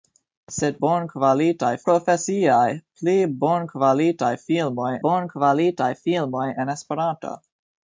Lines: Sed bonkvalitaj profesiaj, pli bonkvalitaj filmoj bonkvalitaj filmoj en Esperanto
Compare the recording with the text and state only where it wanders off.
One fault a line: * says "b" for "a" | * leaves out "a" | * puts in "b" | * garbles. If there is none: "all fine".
all fine